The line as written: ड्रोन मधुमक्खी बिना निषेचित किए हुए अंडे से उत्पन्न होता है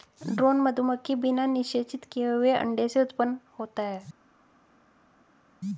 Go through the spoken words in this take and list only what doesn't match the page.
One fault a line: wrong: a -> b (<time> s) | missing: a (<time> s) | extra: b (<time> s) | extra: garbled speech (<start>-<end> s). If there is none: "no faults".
no faults